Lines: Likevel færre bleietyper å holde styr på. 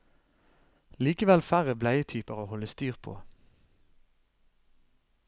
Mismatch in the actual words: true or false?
false